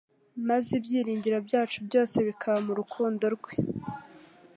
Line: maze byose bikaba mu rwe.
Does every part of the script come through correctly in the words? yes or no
no